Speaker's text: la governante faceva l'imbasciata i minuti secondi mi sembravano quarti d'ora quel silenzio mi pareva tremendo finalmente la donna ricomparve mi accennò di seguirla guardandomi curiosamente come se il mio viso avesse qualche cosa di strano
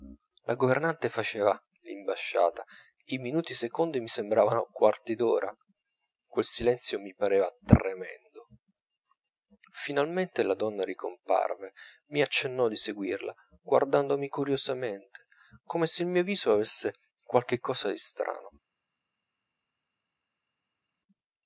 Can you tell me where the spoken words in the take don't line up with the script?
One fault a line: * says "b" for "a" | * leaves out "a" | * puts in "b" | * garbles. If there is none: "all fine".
all fine